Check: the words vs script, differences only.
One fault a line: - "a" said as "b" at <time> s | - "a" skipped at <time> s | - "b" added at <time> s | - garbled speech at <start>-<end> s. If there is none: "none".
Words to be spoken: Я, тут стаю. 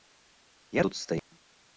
none